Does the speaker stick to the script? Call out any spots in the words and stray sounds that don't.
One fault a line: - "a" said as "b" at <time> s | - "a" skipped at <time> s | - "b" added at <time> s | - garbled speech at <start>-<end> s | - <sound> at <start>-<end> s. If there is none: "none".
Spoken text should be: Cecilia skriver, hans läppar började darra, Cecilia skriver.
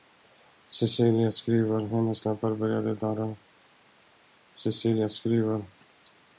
- "hans" said as "hennes" at 1.8 s